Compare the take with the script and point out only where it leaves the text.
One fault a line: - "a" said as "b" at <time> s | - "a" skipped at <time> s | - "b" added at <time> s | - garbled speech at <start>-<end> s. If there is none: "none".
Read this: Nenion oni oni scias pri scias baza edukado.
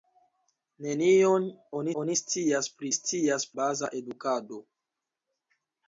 none